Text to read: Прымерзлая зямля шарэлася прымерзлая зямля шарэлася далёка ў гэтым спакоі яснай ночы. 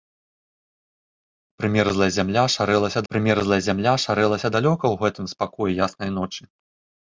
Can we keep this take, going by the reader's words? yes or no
yes